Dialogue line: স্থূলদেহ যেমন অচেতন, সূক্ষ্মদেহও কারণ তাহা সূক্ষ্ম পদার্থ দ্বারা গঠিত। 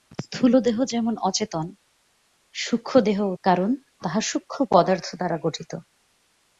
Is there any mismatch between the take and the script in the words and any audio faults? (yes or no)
no